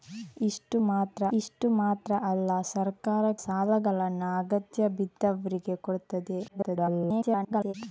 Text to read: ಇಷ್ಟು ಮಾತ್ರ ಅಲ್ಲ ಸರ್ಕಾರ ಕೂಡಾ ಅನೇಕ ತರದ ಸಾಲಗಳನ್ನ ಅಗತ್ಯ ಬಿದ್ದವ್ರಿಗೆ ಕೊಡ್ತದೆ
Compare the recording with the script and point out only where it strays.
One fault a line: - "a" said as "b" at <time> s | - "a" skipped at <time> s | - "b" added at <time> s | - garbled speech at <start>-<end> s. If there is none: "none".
- "ಇಷ್ಟು ಮಾತ್ರ" added at 1.4 s
- "ಕೂಡಾ ಅನೇಕ ತರದ" skipped at 3.2 s
- garbled speech at 6.5-7.7 s